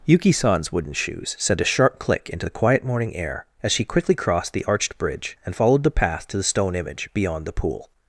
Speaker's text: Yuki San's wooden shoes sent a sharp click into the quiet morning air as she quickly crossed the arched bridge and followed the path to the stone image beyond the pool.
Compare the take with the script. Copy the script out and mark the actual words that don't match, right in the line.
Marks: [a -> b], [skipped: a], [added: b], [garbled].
Yuki San's wooden shoes sent a sharp click into the quiet morning air as she quickly crossed the arched bridge and followed the path to the stone image beyond the pool.